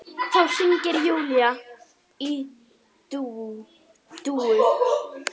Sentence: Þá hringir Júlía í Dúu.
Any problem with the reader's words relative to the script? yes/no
no